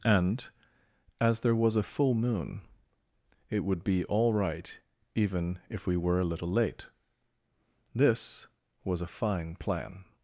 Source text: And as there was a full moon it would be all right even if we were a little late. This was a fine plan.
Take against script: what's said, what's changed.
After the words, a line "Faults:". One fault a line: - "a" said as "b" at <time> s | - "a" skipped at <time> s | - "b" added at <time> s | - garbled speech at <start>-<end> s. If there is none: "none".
And as there was a full moon it would be all right even if we were a little late. This was a fine plan.
Faults:
none